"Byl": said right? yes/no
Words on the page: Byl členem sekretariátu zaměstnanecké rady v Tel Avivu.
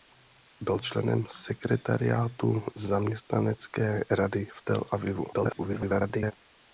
yes